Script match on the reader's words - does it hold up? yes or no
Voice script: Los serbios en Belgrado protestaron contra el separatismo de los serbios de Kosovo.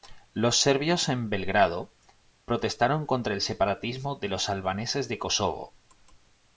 no